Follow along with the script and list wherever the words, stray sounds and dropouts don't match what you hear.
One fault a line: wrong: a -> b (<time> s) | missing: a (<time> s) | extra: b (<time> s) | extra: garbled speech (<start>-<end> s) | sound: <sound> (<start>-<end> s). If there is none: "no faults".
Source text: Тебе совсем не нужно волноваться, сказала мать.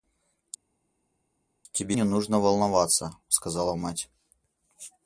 missing: совсем (2.0 s)